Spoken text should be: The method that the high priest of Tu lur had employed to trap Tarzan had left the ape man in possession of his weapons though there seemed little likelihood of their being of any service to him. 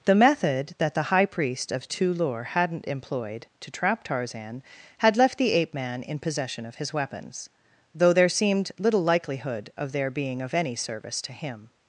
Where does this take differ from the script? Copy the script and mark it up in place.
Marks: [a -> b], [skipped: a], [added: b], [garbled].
The method that the high priest of Tu lur [had -> hadn't] employed to trap Tarzan had left the ape man in possession of his weapons though there seemed little likelihood of their being of any service to him.